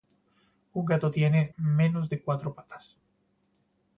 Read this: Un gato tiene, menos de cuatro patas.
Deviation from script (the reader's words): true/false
false